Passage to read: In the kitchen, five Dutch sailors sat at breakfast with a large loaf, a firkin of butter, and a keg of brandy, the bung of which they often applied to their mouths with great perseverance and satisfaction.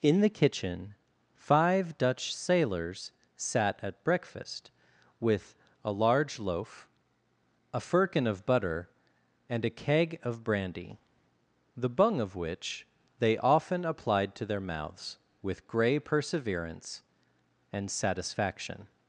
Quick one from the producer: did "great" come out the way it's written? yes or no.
no